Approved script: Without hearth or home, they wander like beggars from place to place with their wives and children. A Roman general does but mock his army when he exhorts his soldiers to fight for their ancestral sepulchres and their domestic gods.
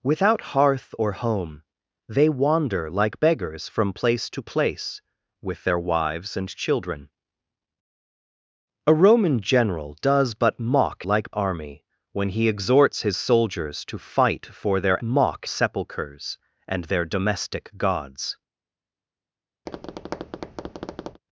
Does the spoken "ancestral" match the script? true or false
false